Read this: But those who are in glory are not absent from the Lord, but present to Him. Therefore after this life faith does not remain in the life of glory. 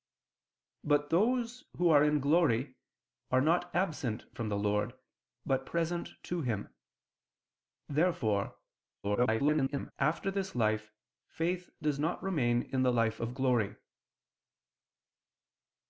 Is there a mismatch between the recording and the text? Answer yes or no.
yes